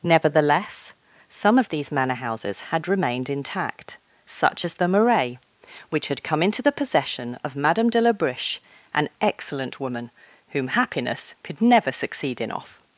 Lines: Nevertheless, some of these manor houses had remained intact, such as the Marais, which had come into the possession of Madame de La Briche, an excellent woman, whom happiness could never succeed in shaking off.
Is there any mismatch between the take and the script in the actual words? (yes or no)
yes